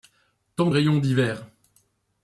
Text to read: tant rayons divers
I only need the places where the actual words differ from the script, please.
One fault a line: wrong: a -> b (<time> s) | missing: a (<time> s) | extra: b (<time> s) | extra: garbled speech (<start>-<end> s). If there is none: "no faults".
no faults